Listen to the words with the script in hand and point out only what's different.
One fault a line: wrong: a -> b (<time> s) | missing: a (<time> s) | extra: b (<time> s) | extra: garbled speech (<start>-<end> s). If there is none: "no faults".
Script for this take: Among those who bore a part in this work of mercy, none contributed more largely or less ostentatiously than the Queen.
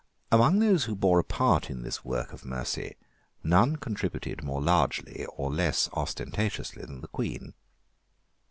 no faults